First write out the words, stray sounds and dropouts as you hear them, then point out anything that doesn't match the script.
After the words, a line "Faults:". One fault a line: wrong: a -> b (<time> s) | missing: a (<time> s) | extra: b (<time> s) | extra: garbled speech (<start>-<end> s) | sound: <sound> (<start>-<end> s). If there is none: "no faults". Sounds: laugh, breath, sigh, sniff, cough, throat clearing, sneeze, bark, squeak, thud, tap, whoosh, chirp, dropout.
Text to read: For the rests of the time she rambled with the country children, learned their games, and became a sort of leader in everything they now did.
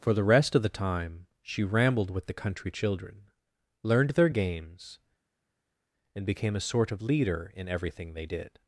For the rest of the time she rambled with the country children, learned their games, and became a sort of leader in everything they did.
Faults:
wrong: rests -> rest (0.2 s)
missing: now (8.2 s)